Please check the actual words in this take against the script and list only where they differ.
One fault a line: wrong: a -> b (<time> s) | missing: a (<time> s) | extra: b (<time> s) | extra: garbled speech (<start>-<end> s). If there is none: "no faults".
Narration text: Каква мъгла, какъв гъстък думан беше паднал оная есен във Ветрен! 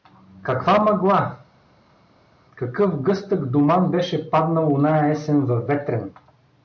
no faults